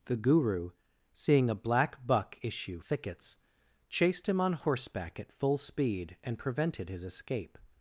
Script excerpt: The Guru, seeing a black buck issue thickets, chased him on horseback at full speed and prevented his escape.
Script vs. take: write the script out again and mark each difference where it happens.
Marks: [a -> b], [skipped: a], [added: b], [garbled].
The Guru, seeing a black buck issue thickets, chased him on horseback at full speed and prevented his escape.